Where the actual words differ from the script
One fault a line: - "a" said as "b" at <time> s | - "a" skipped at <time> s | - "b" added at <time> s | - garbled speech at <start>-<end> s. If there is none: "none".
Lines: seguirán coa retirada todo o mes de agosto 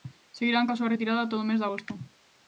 - "súa" added at 0.8 s